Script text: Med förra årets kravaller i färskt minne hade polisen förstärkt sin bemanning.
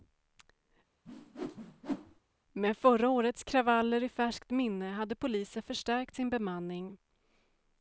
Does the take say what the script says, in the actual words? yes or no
yes